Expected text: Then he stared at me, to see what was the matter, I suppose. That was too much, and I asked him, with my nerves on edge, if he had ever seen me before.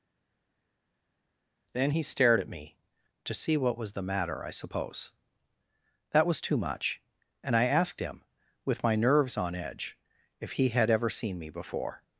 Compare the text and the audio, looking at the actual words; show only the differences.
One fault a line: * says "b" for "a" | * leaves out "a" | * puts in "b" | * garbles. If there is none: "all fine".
all fine